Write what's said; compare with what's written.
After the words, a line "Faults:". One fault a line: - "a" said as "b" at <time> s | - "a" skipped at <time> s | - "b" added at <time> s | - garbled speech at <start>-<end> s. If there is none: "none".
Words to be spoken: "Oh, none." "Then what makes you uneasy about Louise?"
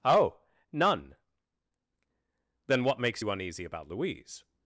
"Oh, none." "Then what makes you uneasy about Louise?"
Faults:
none